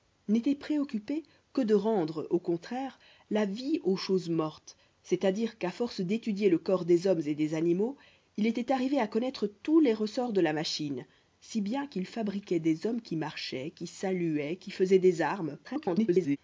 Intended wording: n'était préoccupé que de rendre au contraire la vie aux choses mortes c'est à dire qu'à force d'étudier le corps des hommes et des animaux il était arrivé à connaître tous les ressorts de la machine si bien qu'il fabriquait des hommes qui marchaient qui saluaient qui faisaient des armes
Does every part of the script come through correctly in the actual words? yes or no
no